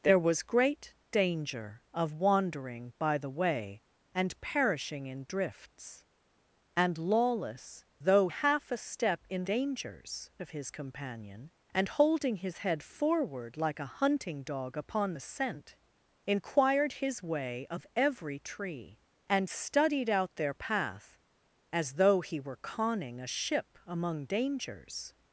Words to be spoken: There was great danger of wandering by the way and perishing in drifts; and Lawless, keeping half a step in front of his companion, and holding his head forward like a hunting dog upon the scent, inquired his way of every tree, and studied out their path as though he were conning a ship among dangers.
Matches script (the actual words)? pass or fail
fail